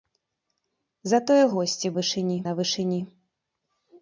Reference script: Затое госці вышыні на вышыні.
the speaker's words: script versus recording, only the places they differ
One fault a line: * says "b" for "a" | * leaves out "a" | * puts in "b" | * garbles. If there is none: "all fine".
all fine